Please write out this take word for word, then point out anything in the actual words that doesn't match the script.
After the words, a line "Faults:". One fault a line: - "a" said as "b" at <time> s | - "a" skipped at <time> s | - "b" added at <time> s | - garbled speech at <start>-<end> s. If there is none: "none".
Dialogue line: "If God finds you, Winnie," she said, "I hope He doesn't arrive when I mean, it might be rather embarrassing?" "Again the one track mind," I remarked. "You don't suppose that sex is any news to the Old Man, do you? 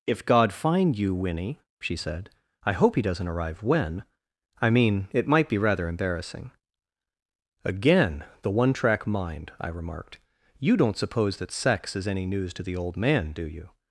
"If God find you, Winnie," she said, "I hope He doesn't arrive when I mean, it might be rather embarrassing?" "Again the one track mind," I remarked. "You don't suppose that sex is any news to the Old Man, do you?
Faults:
- "finds" said as "find" at 0.5 s